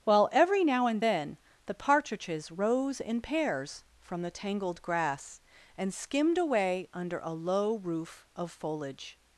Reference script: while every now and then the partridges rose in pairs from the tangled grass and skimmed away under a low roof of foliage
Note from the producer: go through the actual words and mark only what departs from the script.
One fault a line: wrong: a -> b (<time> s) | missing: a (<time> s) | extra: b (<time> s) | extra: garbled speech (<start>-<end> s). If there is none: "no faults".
no faults